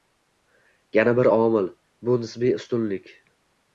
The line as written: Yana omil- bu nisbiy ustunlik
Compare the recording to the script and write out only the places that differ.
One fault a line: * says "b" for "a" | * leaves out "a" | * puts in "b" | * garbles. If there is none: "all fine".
* puts in "bir"